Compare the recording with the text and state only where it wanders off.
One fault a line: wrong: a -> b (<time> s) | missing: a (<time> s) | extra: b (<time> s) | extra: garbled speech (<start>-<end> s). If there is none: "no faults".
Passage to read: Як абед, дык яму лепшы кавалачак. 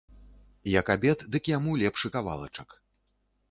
no faults